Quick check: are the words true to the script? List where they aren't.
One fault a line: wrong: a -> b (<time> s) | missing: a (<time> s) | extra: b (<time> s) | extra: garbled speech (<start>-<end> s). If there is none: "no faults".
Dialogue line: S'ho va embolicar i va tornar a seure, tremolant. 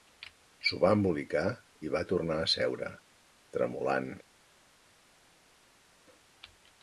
no faults